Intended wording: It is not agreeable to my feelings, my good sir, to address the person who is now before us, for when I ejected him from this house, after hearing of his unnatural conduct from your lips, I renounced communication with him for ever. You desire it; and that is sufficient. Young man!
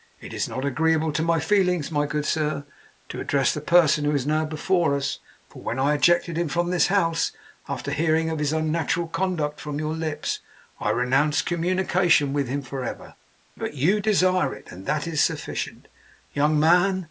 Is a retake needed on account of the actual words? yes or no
yes